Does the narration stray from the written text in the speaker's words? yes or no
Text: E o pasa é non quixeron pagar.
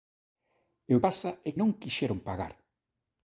no